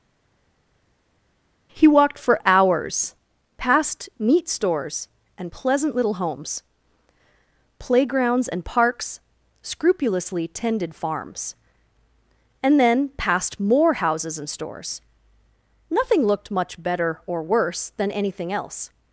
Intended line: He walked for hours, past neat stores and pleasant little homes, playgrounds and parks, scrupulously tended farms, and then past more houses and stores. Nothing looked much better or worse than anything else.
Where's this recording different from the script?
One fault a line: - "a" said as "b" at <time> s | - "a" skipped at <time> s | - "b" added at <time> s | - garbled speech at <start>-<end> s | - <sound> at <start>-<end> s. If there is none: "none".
none